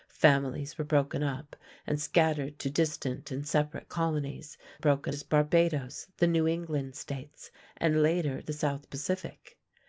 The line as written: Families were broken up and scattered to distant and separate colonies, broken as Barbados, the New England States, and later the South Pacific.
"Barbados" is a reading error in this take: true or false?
false